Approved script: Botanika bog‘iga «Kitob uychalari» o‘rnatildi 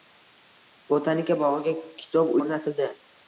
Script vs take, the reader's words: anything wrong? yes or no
yes